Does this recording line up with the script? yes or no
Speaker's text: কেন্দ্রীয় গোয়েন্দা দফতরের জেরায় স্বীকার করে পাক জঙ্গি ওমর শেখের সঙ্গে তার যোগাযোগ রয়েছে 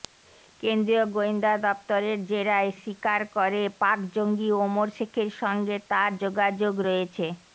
yes